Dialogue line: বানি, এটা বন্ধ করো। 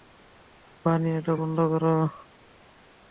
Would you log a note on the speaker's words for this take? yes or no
no